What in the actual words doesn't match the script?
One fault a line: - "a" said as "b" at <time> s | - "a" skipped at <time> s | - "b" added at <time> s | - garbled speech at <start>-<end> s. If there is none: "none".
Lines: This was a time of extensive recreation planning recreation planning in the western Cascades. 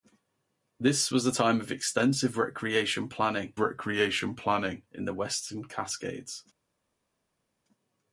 none